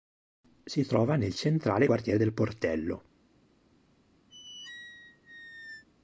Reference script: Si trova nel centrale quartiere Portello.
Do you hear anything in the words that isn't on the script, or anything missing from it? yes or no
yes